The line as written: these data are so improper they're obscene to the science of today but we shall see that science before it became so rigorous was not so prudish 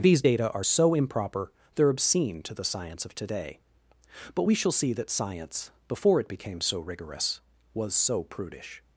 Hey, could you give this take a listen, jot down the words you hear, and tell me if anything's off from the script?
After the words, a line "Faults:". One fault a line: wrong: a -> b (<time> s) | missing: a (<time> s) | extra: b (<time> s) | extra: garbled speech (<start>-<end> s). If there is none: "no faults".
these data are so improper they're obscene to the science of today but we shall see that science before it became so rigorous was so prudish
Faults:
missing: not (7.9 s)